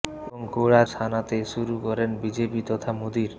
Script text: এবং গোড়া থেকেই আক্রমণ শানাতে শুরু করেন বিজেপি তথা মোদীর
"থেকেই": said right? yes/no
no